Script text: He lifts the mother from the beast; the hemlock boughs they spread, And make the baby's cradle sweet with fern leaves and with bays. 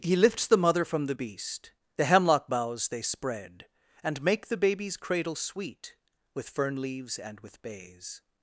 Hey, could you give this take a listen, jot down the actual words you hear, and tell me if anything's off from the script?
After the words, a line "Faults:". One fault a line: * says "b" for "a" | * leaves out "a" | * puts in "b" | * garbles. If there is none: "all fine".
He lifts the mother from the beast; the hemlock boughs they spread, And make the baby's cradle sweet with fern leaves and with bays.
Faults:
all fine